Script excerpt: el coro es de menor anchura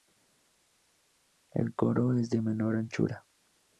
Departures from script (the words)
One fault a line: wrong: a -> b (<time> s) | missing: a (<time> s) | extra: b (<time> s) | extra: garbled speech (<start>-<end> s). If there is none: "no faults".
no faults